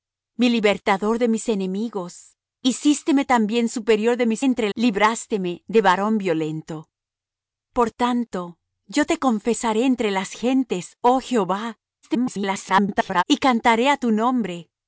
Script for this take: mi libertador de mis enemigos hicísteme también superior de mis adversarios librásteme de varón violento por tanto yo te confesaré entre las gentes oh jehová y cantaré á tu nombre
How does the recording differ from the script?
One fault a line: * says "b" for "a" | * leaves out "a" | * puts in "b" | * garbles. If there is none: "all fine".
* says "entre" for "adversarios"
* garbles